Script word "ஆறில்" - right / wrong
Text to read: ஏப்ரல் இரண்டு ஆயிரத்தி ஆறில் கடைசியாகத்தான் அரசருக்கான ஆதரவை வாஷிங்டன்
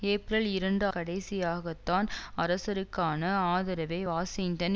wrong